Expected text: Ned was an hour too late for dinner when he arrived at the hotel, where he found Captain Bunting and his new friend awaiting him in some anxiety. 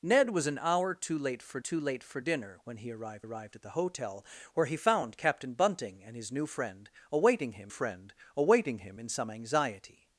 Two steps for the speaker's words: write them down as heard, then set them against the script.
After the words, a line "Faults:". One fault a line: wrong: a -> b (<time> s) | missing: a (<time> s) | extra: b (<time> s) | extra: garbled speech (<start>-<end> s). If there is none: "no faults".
Ned was an hour too late for too late for dinner when he arrived arrived at the hotel, where he found Captain Bunting and his new friend awaiting him friend awaiting him in some anxiety.
Faults:
extra: too late for (1.6 s)
extra: arrived (3.2 s)
extra: friend awaiting him (7.7 s)